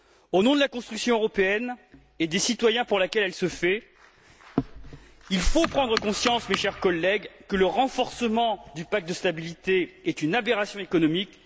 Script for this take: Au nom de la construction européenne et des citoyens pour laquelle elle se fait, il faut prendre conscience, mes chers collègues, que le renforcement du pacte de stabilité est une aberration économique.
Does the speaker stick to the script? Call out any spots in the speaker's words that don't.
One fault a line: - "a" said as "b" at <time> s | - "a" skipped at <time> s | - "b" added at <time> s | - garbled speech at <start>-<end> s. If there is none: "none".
none